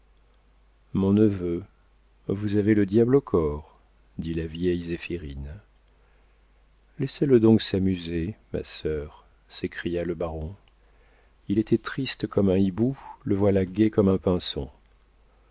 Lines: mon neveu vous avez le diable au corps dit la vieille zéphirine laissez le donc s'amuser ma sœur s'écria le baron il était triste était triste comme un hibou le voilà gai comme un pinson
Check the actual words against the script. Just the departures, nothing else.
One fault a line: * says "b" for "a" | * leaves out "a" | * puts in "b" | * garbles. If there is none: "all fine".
* leaves out "était triste"